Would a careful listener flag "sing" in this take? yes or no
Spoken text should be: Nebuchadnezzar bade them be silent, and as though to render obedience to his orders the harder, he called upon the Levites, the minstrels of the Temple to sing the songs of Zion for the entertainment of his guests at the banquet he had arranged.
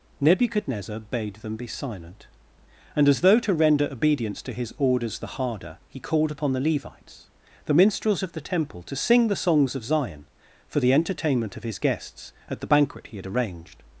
no